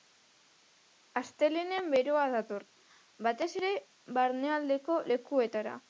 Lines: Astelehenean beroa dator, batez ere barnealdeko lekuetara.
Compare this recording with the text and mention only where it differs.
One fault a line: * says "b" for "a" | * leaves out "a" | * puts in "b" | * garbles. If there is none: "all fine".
all fine